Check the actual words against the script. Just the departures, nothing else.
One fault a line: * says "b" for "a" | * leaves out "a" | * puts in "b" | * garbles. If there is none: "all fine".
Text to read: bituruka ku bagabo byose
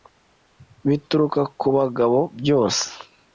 all fine